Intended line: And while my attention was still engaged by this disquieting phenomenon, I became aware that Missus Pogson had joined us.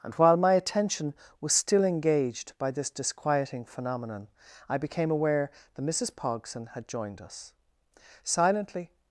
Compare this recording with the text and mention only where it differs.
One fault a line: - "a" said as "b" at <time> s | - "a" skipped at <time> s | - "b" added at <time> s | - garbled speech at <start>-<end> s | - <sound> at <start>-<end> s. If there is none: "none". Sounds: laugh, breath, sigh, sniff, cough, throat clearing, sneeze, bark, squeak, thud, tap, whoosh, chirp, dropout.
- "Silently" added at 8.2 s